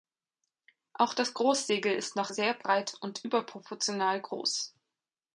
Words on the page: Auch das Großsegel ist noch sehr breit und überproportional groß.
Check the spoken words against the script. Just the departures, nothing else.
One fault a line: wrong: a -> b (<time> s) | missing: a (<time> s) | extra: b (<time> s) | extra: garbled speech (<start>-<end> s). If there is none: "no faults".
no faults